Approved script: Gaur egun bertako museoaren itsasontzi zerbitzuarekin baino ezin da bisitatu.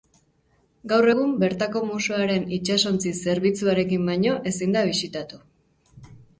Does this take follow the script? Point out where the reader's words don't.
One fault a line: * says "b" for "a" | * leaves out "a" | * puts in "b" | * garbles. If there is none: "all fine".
all fine